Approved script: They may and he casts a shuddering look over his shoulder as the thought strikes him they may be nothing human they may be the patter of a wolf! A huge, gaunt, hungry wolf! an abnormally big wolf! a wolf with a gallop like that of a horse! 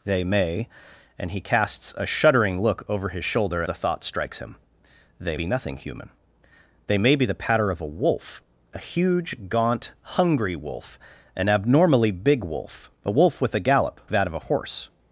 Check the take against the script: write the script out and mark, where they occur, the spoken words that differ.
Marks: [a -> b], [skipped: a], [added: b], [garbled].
They may and he casts a shuddering look over his shoulder [skipped: as] the thought strikes him they [skipped: may] be nothing human they may be the patter of a wolf! A huge, gaunt, hungry wolf! an abnormally big wolf! a wolf with a gallop [skipped: like] that of a horse!